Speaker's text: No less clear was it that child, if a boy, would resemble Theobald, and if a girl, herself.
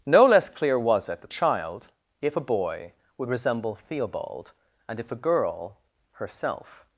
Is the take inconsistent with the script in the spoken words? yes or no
no